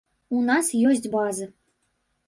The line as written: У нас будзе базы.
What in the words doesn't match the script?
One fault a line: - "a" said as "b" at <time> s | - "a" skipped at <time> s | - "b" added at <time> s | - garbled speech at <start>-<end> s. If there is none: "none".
- "будзе" said as "ёсць" at 0.9 s